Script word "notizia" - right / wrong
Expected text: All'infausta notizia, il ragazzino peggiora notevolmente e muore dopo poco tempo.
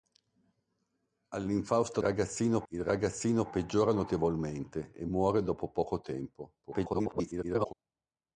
wrong